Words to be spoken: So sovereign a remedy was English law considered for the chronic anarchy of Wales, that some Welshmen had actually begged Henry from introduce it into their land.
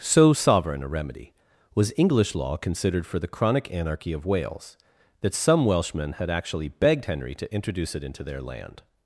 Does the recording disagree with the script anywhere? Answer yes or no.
yes